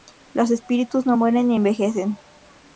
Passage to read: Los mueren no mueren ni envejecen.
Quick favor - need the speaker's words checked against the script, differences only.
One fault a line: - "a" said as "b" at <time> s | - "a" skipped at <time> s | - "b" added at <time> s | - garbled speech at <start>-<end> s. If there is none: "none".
- "mueren" said as "espíritus" at 0.5 s